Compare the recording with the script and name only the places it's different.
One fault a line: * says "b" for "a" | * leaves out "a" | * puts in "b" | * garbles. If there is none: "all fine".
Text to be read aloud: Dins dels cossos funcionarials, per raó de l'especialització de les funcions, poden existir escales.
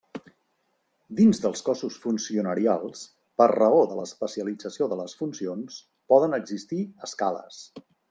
all fine